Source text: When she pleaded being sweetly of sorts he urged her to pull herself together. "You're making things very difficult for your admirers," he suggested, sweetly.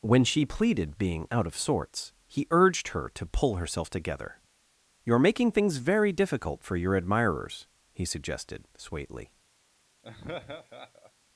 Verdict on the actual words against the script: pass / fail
fail